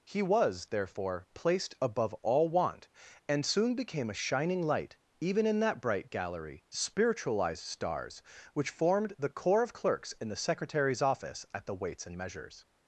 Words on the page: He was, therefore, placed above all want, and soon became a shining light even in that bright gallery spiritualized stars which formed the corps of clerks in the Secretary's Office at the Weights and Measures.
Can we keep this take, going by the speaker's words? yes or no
yes